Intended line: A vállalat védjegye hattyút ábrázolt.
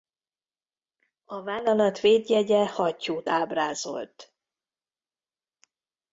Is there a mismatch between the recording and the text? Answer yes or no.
no